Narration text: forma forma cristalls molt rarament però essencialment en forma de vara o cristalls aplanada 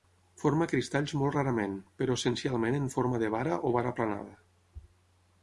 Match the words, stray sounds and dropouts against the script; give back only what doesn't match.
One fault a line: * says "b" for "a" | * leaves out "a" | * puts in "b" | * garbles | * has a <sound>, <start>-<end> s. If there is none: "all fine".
* leaves out "forma"
* says "vara" for "cristalls"